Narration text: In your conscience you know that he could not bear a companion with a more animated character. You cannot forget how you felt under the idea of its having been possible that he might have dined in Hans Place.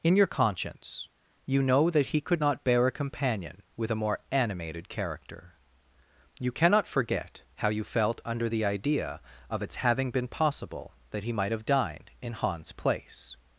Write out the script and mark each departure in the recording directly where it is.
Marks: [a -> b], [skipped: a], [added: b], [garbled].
In your conscience you know that he could not bear a companion with a more animated character. You cannot forget how you felt under the idea of its having been possible that he might have dined in Hans Place.